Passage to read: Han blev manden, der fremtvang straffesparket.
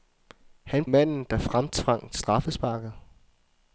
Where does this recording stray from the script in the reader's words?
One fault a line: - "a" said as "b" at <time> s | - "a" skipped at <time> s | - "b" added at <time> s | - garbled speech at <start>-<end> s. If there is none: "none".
- "blev" skipped at 0.8 s